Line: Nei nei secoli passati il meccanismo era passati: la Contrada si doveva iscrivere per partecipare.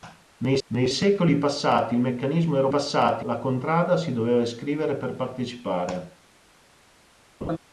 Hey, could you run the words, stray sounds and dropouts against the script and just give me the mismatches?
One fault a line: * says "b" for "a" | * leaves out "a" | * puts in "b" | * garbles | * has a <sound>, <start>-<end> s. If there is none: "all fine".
* has a laugh, 7.4-7.6 s